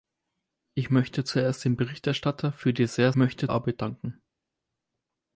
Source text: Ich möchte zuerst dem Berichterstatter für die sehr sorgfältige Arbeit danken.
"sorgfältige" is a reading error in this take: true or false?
true